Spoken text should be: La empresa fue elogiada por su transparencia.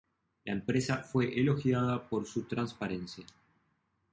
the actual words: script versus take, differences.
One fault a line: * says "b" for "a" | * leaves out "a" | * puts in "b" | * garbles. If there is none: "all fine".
all fine